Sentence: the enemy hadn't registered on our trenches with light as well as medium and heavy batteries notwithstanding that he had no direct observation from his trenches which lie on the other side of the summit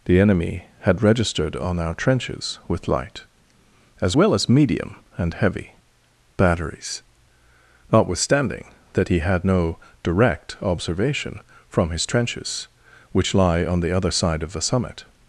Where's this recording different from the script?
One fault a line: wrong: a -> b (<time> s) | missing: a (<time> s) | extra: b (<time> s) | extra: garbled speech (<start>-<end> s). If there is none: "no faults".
wrong: hadn't -> had (0.8 s)